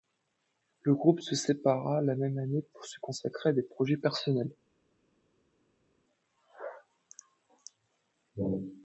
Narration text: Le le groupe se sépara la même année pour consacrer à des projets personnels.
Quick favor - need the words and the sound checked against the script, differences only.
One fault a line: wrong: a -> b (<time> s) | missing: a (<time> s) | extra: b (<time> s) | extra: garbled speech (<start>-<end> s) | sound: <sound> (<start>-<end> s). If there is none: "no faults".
missing: le (0.9 s)
extra: se (2.8 s)